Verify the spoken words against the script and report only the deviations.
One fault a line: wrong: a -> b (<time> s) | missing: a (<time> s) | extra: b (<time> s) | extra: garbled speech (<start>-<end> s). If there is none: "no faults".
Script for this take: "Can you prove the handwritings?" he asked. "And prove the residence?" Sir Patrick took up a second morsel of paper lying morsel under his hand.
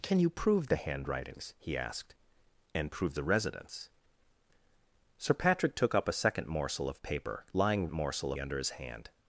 no faults